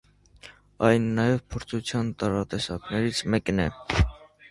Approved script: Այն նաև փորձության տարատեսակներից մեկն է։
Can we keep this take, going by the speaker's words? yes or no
yes